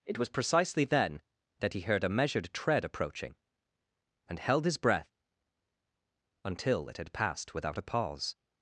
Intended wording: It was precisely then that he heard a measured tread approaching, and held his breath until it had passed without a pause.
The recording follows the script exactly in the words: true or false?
true